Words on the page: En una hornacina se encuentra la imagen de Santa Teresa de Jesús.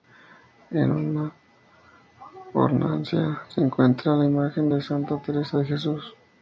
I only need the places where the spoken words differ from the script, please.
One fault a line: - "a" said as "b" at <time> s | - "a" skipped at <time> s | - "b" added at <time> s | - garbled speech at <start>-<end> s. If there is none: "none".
none